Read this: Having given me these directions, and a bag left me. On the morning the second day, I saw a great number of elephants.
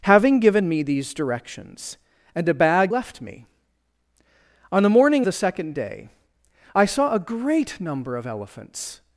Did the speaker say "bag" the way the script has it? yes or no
yes